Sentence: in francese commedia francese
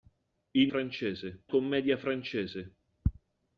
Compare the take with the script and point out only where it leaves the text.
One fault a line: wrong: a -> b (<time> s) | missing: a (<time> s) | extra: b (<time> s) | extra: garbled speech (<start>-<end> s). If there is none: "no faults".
no faults